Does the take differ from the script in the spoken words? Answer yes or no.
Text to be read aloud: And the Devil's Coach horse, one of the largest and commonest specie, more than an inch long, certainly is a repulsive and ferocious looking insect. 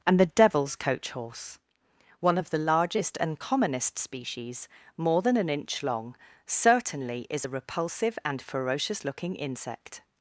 yes